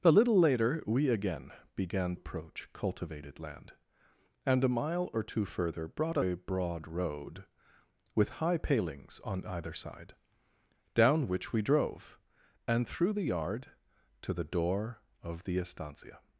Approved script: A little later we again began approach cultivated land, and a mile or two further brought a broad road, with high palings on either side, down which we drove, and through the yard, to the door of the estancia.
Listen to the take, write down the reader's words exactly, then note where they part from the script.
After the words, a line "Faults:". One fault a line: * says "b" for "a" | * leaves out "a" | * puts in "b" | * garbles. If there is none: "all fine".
A little later we again began approach cultivated land, and a mile or two further brought a broad road, with high palings on either side, down which we drove, and through the yard, to the door of the estancia.
Faults:
all fine